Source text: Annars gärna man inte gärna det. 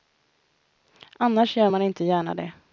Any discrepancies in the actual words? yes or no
yes